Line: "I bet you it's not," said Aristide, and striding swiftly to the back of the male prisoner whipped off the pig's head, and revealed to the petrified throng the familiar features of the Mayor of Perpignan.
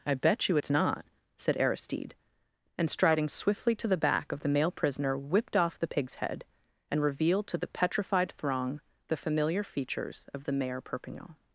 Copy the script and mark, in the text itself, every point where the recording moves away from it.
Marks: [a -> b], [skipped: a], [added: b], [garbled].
"I bet you it's not," said Aristide, and striding swiftly to the back of the male prisoner whipped off the pig's head, and revealed to the petrified throng the familiar features of the Mayor [skipped: of] Perpignan.